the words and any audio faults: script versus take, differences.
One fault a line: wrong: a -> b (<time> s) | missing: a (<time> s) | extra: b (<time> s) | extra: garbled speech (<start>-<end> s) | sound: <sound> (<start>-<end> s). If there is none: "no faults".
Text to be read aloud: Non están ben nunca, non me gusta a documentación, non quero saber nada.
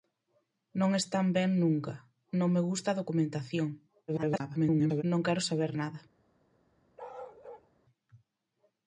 extra: garbled speech (4.1-5.0 s)
sound: bark (7.0-7.7 s)